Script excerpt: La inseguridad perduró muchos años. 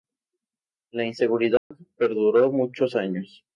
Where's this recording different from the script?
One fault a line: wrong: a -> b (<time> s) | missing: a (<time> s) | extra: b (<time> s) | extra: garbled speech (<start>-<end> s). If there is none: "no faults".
no faults